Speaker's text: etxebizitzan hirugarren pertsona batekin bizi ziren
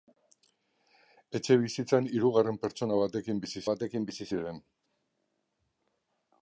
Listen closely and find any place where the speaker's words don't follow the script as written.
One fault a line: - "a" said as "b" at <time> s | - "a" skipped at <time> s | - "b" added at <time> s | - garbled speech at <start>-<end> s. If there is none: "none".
- "batekin bizi" added at 3.7 s